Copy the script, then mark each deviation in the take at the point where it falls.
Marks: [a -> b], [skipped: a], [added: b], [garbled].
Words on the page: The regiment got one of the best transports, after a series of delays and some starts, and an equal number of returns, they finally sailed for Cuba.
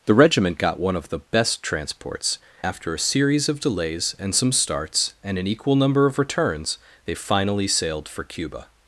The regiment got one of the best transports, after a series of delays and some starts, and an equal number of returns, they finally sailed for Cuba.